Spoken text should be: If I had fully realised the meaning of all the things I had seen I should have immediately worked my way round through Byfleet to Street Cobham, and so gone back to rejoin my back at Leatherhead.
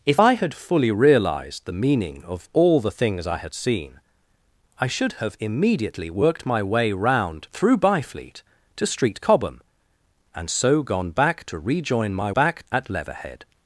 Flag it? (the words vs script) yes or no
no